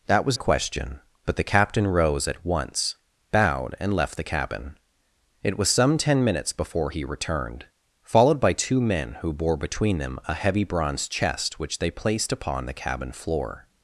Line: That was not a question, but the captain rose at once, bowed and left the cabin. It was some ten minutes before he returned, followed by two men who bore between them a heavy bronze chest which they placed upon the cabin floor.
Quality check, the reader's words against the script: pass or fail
fail